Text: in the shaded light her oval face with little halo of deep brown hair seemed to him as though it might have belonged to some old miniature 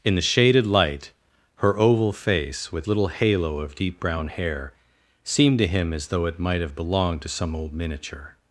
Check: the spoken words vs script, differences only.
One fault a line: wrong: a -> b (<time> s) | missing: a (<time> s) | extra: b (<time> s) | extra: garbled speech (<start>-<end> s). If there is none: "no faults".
no faults